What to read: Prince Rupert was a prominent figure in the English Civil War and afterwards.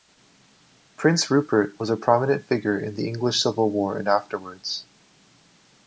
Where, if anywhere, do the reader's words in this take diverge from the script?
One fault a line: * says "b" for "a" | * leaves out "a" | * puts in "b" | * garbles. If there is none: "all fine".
all fine